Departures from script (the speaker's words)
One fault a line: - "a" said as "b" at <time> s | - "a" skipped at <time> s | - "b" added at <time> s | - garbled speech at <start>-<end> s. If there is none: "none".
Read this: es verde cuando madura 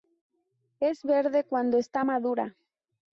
- "está" added at 1.8 s